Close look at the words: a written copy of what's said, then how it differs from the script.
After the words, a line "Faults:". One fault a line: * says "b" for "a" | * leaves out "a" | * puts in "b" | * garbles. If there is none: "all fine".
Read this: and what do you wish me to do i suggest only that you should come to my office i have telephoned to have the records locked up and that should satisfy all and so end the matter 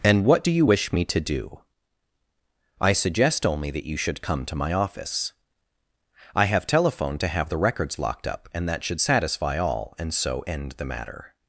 and what do you wish me to do i suggest only that you should come to my office i have telephoned to have the records locked up and that should satisfy all and so end the matter
Faults:
all fine